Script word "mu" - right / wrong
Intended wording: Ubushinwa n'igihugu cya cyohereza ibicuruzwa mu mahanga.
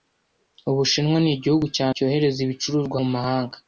right